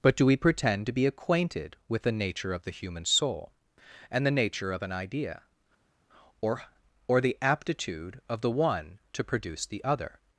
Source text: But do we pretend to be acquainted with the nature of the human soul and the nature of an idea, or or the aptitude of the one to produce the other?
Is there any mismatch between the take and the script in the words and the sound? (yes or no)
no